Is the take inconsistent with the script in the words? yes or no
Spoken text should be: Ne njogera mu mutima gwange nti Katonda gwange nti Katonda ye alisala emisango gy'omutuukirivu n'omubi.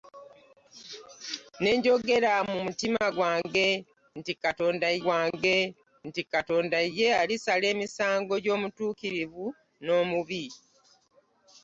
no